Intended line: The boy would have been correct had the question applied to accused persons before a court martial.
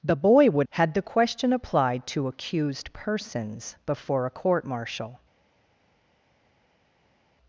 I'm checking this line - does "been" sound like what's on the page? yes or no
no